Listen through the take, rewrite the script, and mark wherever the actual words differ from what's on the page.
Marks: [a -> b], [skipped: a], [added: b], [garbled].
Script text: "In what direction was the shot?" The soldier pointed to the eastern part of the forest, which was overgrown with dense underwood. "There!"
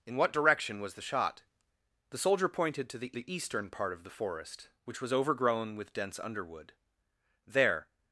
"In what direction was the shot?" The soldier pointed to the [added: the] eastern part of the forest, which was overgrown with dense underwood. "There!"